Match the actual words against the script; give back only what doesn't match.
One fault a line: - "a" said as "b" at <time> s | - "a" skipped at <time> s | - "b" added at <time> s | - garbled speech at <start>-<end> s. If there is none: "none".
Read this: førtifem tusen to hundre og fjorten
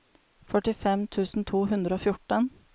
none